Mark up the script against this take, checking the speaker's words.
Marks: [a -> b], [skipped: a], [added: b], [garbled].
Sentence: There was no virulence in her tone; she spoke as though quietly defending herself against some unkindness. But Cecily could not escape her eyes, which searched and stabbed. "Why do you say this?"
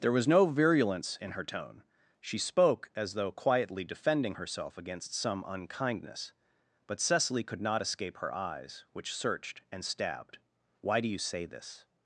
There was no virulence in her tone; she spoke as though quietly defending herself against some unkindness. But Cecily could not escape her eyes, which searched and stabbed. "Why do you say this?"